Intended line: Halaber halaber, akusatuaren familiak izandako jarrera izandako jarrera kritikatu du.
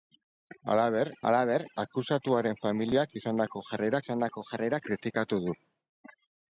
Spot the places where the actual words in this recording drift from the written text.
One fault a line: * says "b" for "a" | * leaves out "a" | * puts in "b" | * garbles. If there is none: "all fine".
all fine